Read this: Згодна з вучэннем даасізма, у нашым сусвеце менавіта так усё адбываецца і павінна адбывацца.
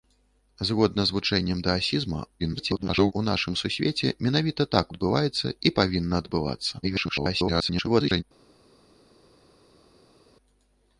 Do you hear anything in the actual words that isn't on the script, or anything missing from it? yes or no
yes